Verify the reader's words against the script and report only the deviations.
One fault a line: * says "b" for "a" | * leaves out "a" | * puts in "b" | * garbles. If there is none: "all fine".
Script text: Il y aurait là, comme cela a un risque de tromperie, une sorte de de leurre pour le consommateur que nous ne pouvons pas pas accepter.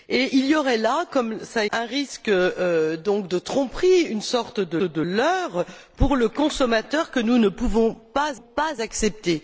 all fine